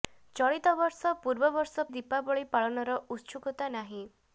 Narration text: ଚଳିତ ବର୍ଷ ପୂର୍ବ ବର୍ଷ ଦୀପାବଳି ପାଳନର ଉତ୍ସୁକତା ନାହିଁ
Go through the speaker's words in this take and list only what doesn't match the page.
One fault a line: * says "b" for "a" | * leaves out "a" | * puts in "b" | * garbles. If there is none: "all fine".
all fine